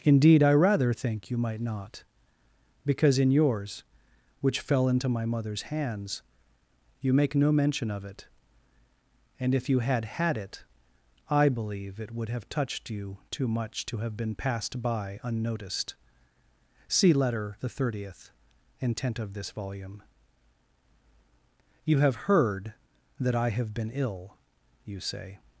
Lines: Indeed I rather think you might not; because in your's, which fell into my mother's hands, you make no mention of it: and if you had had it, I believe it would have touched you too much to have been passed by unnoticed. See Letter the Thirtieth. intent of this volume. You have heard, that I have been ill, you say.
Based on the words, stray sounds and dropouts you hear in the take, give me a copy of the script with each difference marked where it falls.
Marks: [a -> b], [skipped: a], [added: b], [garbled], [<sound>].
Indeed I rather think you might not; because in your's, which fell into my mother's hands, you make no mention of it: and if you had had it, I believe it would have touched you too much to have been passed by unnoticed. See Letter the Thirtieth. intent of this volume. You have heard, that I have been ill, you say.